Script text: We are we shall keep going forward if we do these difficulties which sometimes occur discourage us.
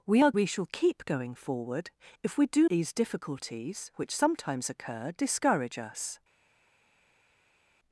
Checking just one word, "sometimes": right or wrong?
right